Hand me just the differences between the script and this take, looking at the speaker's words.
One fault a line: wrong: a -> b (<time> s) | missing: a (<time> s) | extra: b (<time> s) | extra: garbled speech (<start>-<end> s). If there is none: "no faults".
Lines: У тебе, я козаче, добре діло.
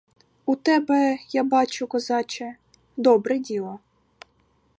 extra: бачу (1.4 s)